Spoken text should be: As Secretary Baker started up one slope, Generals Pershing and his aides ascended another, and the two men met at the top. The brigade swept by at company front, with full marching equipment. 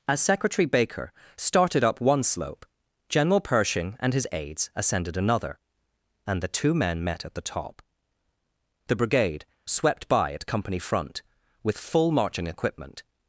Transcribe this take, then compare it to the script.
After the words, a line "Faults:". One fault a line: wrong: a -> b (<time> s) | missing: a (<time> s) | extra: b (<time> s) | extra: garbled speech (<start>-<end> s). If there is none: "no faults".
As Secretary Baker started up one slope, General Pershing and his aides ascended another, and the two men met at the top. The brigade swept by at company front, with full marching equipment.
Faults:
wrong: Generals -> General (3.1 s)